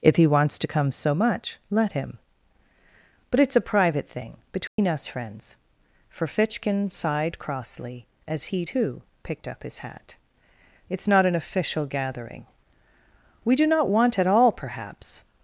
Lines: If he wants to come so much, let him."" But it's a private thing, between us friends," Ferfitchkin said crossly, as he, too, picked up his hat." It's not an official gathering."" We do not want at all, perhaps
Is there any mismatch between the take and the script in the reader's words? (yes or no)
yes